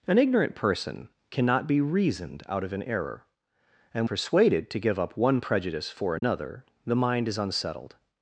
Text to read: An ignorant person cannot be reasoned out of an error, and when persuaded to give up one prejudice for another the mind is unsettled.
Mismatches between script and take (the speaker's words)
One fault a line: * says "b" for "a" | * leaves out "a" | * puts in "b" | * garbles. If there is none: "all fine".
* leaves out "when"